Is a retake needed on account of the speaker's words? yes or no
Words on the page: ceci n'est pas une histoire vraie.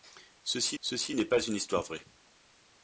yes